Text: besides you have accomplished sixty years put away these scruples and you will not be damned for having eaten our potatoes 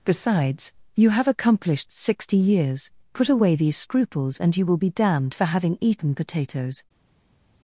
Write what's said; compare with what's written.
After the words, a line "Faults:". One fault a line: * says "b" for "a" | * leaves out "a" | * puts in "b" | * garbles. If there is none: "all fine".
besides you have accomplished sixty years put away these scruples and you will be damned for having eaten potatoes
Faults:
* leaves out "not"
* leaves out "our"